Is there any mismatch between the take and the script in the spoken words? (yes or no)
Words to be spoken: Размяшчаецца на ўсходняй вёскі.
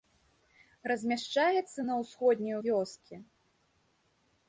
no